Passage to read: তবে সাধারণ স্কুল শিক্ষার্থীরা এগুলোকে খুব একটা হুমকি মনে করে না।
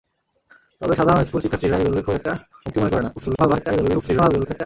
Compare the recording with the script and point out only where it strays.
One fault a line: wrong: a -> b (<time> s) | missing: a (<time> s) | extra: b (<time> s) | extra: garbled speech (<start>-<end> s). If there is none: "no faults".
extra: garbled speech (3.2-4.7 s)